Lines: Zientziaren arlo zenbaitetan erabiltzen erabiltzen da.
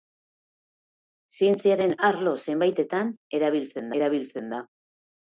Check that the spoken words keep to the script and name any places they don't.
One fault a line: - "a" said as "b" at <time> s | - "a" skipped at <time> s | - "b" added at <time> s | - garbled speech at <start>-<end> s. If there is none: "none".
none